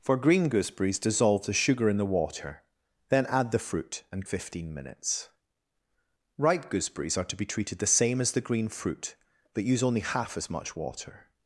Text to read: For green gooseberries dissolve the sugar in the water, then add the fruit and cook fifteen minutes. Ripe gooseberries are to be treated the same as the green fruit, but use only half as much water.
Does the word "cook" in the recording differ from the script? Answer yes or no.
yes